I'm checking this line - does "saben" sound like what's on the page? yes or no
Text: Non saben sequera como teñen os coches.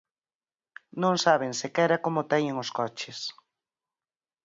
yes